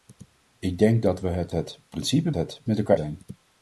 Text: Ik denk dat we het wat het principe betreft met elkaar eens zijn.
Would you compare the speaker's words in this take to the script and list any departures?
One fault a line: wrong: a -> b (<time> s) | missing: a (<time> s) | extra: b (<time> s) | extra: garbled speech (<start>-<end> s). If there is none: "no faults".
missing: wat (1.5 s)
wrong: betreft -> het (2.3 s)
missing: eens (3.0 s)